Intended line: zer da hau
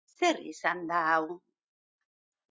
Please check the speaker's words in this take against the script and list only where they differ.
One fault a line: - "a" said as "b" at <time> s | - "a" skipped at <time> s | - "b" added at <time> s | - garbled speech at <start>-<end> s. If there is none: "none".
- "izan" added at 0.5 s